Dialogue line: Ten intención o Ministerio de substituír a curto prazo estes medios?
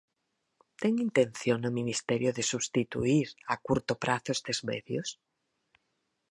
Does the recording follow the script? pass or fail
pass